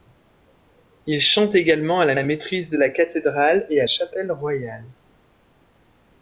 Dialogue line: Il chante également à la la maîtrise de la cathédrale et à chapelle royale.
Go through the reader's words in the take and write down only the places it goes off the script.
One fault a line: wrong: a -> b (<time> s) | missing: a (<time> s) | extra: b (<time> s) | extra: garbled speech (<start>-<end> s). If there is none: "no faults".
no faults